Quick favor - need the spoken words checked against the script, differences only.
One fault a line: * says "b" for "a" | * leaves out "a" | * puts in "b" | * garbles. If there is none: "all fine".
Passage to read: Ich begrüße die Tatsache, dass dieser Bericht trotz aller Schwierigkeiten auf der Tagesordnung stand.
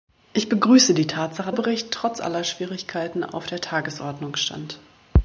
* leaves out "dass dieser"